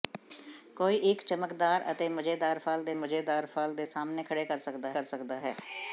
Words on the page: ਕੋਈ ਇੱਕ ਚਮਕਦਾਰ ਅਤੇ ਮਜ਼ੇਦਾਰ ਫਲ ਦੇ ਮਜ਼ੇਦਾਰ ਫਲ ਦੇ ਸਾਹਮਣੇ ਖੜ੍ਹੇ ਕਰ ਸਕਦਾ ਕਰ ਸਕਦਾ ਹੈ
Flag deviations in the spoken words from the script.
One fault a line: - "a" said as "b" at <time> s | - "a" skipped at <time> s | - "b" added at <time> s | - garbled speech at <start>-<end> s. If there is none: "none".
none